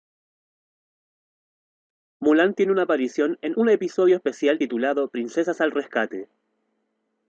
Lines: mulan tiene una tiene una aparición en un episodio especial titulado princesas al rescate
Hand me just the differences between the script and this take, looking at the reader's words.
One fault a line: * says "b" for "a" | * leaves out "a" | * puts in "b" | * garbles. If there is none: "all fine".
* leaves out "tiene una"